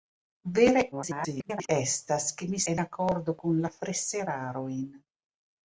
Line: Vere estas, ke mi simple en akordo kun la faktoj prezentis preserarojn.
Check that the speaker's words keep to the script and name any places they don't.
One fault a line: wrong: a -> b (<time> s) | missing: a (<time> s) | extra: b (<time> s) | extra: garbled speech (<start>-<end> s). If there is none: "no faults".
extra: garbled speech (0.9-1.7 s)
missing: simple (2.6 s)
missing: faktoj prezentis (3.7 s)